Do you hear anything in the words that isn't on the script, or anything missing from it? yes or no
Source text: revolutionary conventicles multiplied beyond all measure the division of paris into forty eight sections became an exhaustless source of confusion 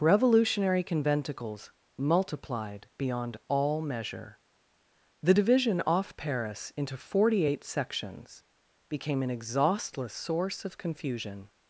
yes